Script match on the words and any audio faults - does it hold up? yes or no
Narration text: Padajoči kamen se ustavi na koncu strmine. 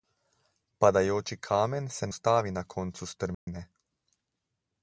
no